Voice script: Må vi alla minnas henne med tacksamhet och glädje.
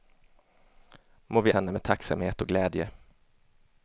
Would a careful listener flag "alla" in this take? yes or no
yes